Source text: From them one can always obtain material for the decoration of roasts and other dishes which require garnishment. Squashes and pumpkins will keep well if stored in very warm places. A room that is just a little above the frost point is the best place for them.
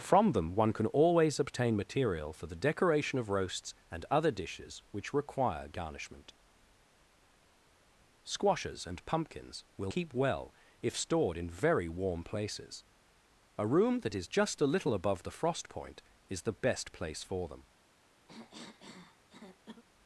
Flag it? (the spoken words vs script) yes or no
no